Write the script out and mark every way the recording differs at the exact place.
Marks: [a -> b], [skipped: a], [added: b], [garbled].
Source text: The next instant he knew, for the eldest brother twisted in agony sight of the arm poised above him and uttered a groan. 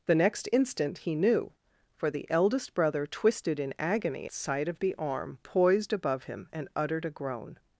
The next instant he knew, for the eldest brother twisted in agony sight of the arm poised above him and uttered a groan.